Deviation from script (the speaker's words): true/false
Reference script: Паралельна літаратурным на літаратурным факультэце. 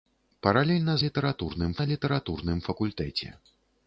false